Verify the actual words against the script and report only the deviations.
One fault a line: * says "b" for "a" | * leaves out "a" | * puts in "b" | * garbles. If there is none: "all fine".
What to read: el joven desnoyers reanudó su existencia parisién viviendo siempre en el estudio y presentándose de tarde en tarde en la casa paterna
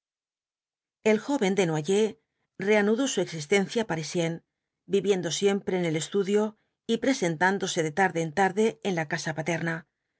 all fine